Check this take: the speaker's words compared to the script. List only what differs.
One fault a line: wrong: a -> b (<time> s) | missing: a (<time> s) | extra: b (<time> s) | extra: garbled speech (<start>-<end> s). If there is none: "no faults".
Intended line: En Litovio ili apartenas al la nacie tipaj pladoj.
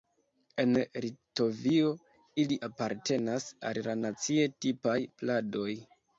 no faults